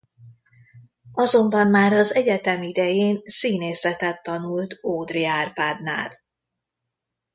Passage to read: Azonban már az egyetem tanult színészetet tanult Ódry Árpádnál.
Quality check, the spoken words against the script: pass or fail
fail